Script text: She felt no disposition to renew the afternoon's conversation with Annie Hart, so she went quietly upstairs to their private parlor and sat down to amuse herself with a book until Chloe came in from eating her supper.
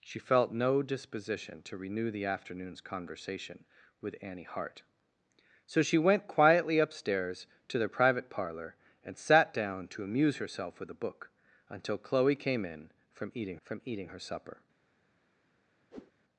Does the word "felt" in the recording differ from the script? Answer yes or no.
no